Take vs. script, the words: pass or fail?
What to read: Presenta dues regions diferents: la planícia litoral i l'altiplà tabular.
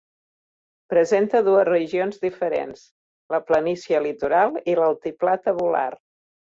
pass